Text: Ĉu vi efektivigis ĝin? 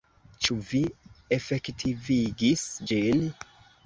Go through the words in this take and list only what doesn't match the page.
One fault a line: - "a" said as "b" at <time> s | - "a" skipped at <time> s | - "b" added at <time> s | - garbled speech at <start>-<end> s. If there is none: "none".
none